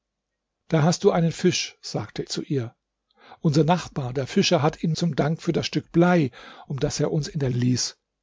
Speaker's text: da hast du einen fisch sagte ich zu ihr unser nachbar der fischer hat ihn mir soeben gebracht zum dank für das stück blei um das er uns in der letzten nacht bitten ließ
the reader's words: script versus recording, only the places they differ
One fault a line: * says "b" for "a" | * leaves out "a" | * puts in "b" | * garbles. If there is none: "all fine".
* leaves out "ich"
* leaves out "mir soeben gebracht"
* leaves out "letzten nacht bitten"